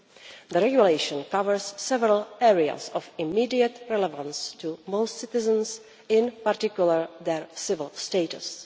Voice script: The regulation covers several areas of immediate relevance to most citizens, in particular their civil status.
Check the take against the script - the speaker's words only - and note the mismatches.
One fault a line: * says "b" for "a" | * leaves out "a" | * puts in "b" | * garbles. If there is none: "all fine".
all fine